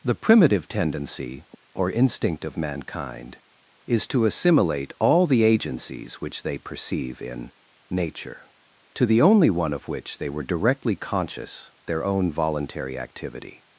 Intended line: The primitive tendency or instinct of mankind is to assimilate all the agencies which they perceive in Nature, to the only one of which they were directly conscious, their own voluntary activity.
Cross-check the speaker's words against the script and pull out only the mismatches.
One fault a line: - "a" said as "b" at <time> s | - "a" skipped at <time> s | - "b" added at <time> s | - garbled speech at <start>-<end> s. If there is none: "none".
none